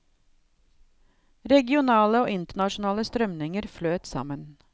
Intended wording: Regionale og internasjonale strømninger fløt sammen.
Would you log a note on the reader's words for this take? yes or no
no